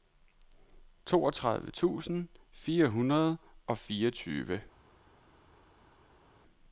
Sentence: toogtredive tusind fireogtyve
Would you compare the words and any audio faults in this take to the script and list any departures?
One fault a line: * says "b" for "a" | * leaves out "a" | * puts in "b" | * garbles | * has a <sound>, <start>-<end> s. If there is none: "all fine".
* puts in "fire hundrede og"